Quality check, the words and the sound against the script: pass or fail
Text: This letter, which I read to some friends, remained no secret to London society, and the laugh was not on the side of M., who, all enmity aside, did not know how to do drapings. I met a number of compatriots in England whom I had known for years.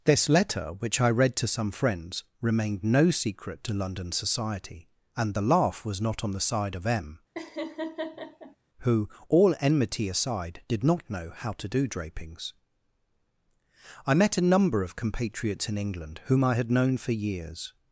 fail